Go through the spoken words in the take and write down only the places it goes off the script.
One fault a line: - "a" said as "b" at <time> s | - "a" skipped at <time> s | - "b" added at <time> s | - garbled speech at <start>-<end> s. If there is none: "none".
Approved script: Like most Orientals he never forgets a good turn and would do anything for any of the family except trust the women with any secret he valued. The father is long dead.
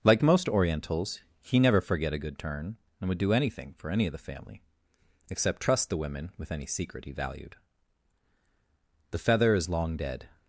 - "forgets" said as "forget" at 1.8 s
- "father" said as "feather" at 9.2 s